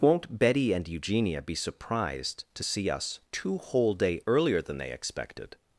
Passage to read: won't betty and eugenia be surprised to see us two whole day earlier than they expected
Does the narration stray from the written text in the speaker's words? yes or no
no